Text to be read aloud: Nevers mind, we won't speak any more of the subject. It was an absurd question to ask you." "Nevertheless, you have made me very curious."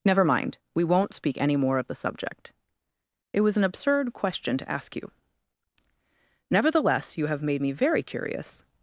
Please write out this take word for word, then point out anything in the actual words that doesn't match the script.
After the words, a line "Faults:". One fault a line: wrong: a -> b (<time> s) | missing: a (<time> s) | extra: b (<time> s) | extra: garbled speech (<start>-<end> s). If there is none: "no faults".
Never mind, we won't speak any more of the subject. It was an absurd question to ask you." "Nevertheless, you have made me very curious."
Faults:
wrong: Nevers -> Never (0.0 s)